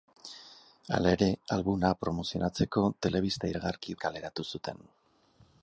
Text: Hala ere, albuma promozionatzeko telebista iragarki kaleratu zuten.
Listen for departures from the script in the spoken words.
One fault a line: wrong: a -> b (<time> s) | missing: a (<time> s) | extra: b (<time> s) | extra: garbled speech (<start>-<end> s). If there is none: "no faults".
no faults